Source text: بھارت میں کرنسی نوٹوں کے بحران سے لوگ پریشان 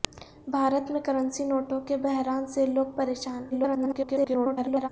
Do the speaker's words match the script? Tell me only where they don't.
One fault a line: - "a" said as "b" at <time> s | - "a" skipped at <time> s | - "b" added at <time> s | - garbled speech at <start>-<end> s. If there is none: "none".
- garbled speech at 3.5-4.9 s